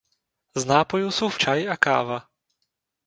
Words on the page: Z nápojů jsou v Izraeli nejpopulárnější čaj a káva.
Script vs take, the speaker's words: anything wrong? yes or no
yes